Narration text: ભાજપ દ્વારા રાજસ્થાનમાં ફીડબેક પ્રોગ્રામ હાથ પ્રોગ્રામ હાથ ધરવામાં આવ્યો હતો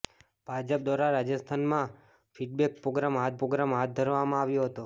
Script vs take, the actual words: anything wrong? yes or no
no